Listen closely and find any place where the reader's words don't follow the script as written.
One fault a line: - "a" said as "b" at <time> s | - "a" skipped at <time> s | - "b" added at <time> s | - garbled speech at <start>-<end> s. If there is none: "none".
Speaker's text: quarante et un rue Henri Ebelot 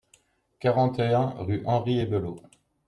none